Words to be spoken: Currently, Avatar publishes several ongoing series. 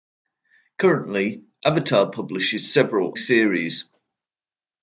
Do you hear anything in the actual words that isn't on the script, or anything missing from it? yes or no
yes